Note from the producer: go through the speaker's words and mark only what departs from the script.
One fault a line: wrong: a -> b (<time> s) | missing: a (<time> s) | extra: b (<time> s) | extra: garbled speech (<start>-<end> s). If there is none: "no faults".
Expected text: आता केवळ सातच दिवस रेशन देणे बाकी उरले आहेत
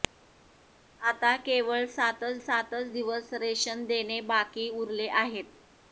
extra: सातच (2.4 s)